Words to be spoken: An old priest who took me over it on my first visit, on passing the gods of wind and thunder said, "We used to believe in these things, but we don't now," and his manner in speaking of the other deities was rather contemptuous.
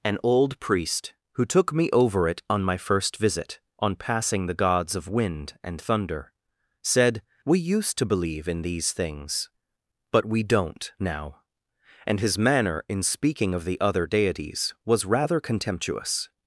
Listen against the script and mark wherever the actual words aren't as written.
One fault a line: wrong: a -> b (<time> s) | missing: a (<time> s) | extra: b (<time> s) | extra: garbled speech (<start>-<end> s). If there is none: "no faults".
no faults